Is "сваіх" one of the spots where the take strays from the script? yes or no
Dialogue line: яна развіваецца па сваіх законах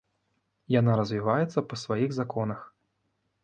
no